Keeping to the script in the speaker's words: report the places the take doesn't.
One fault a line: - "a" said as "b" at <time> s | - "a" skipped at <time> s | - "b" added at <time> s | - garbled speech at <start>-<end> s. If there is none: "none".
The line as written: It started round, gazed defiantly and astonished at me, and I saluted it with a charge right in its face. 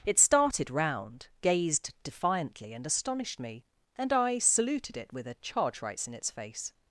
- "at" skipped at 3.4 s
- "right" said as "rights" at 5.8 s